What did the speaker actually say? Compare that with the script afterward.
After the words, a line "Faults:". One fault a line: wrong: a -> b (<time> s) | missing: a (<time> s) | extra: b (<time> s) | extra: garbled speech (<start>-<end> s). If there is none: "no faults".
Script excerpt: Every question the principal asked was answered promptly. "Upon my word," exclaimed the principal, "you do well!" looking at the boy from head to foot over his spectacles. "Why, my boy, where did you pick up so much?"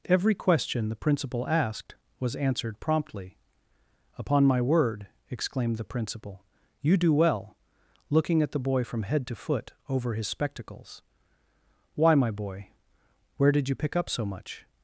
Every question the principal asked was answered promptly. "Upon my word," exclaimed the principal, "you do well!" looking at the boy from head to foot over his spectacles. "Why, my boy, where did you pick up so much?"
Faults:
no faults